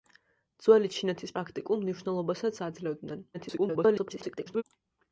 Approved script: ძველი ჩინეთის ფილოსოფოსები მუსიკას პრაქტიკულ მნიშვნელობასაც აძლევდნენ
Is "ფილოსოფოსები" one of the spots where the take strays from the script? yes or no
yes